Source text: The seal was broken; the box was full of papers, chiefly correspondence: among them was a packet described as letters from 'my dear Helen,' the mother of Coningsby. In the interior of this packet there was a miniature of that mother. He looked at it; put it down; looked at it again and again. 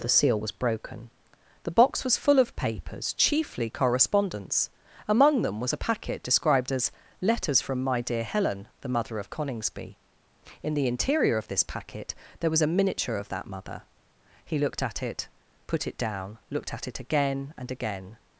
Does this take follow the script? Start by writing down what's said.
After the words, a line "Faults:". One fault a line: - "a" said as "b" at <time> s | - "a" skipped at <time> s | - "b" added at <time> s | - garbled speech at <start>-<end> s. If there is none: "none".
The seal was broken; the box was full of papers, chiefly correspondence: among them was a packet described as letters from 'my dear Helen,' the mother of Coningsby. In the interior of this packet there was a miniature of that mother. He looked at it; put it down; looked at it again and again.
Faults:
none